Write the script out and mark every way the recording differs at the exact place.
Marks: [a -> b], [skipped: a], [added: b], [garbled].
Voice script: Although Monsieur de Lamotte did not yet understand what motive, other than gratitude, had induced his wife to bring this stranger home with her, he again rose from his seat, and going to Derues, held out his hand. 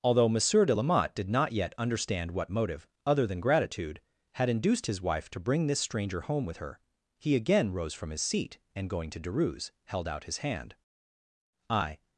Although Monsieur de Lamotte did not yet understand what motive, other than gratitude, had induced his wife to bring this stranger home with her, he again rose from his seat, and going to Derues, held out his hand. [added: I]